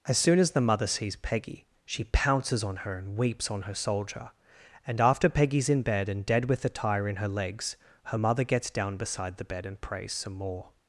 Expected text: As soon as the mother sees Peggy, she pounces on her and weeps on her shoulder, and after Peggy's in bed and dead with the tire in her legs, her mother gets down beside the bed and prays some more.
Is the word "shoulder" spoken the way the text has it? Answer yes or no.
no